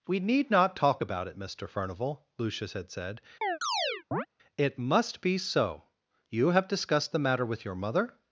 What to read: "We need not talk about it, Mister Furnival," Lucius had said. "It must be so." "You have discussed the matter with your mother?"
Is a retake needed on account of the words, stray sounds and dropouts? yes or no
yes